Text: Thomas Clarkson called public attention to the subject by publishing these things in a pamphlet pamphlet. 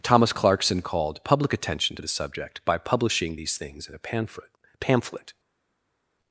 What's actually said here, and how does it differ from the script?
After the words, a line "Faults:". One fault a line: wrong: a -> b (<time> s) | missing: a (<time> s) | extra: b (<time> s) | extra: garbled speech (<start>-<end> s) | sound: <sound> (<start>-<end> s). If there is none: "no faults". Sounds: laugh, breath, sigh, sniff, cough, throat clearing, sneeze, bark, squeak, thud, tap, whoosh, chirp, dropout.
Thomas Clarkson called public attention to the subject by publishing these things in a pamphlet pamphlet.
Faults:
no faults